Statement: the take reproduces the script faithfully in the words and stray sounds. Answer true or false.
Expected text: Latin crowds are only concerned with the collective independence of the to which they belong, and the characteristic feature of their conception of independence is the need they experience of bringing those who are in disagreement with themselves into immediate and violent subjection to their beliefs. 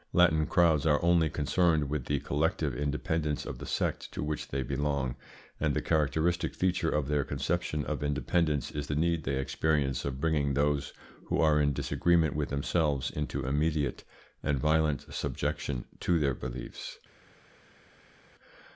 false